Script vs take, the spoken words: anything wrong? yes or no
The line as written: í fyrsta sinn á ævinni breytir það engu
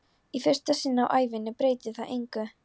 no